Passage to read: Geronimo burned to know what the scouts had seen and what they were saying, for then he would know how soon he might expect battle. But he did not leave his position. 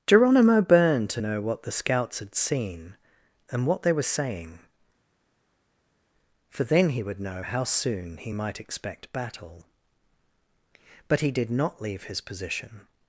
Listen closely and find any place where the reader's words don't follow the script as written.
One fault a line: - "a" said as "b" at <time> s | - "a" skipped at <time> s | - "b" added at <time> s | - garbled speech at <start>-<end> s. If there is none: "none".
none